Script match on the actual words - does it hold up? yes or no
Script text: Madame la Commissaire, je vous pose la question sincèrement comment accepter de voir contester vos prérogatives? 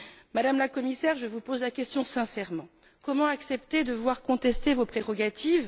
yes